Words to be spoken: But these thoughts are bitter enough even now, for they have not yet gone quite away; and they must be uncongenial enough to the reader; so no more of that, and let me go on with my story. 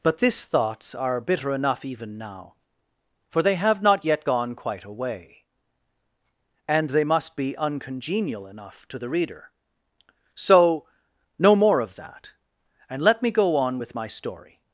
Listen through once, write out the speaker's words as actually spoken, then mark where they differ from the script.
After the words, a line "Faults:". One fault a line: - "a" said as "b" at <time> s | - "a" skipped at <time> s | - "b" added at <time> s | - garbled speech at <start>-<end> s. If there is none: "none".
But this thoughts are bitter enough even now, for they have not yet gone quite away; and they must be uncongenial enough to the reader; so no more of that, and let me go on with my story.
Faults:
- "these" said as "this" at 0.2 s